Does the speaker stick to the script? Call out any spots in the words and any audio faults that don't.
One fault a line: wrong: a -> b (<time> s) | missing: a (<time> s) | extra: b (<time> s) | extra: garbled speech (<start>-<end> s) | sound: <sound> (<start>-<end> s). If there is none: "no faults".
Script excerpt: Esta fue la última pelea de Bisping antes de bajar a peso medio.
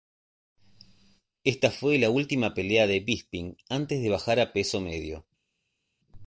no faults